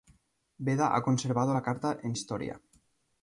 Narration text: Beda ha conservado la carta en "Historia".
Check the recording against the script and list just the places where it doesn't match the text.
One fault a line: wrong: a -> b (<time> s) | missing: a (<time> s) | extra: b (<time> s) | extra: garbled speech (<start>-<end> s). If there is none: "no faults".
no faults